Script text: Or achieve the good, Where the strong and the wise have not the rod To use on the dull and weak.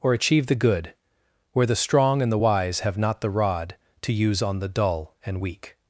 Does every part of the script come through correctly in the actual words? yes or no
yes